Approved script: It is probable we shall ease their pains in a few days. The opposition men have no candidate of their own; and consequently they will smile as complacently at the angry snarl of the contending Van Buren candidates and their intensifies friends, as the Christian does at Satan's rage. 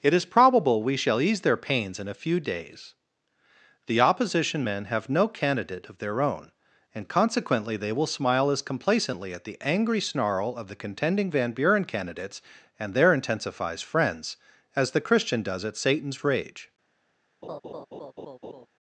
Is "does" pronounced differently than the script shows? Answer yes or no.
no